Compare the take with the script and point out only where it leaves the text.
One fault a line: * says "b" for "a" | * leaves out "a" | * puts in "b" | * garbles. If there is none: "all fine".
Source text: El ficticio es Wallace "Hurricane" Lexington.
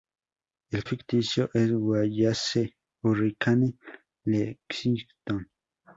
all fine